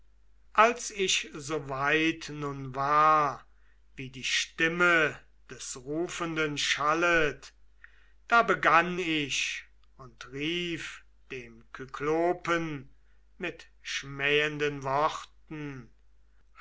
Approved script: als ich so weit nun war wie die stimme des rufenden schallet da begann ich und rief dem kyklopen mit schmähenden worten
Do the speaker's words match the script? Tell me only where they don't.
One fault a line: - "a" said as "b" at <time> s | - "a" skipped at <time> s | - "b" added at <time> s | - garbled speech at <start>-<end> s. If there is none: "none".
none